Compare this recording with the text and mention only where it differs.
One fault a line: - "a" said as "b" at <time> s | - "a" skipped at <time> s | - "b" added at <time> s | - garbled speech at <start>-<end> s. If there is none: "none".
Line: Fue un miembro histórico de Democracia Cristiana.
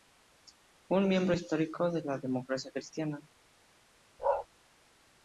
- "la" added at 2.0 s